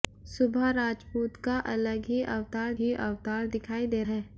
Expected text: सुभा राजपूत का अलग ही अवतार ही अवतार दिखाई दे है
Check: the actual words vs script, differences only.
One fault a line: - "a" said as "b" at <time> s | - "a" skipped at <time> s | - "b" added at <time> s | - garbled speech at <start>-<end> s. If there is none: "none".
none